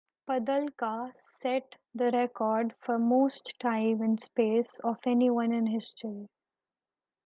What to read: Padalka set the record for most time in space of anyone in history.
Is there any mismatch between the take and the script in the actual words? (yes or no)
no